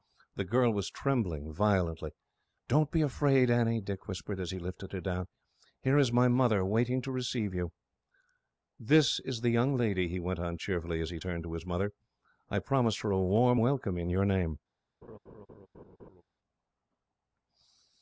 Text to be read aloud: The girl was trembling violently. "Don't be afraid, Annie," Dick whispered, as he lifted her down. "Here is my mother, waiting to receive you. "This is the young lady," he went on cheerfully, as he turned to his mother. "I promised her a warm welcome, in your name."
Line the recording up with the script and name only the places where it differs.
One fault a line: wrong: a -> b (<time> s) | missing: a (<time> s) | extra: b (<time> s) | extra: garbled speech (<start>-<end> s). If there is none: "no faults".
no faults